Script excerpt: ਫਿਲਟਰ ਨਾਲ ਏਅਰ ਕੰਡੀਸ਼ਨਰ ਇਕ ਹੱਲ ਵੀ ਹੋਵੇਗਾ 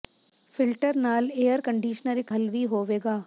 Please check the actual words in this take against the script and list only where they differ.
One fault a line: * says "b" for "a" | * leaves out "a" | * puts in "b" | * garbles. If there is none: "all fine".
all fine